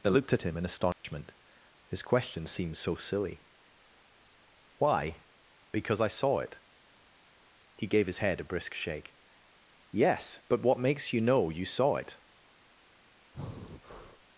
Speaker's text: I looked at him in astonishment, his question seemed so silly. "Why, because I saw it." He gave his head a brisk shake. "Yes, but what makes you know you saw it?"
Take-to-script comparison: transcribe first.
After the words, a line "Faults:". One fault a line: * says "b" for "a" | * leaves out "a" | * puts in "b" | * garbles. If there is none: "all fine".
they looked at him in astonishment, his question seemed so silly. "Why, because I saw it." He gave his head a brisk shake. "Yes, but what makes you know you saw it?"
Faults:
* says "they" for "I"